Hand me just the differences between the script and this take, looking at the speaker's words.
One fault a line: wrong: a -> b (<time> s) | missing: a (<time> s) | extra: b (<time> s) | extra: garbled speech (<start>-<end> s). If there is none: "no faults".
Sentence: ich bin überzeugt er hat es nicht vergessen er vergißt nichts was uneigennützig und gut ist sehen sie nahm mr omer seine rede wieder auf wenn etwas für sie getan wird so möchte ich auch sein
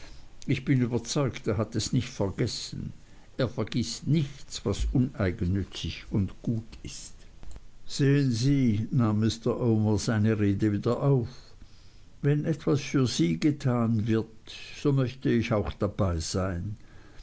extra: dabei (15.7 s)